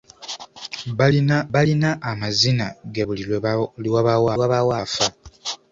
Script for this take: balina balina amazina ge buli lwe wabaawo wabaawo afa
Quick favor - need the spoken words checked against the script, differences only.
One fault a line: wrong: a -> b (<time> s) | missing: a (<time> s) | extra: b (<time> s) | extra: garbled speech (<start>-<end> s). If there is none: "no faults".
no faults